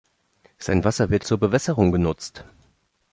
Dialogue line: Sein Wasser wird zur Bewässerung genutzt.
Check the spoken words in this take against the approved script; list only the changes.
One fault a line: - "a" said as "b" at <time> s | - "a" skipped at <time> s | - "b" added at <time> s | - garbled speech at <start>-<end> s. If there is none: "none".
none